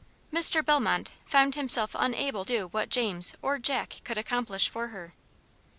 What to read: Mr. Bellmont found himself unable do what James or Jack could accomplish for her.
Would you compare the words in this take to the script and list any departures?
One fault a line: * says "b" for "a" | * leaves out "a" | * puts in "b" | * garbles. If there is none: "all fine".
all fine